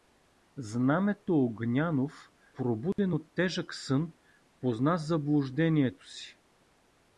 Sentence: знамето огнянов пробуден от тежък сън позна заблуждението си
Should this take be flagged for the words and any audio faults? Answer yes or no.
yes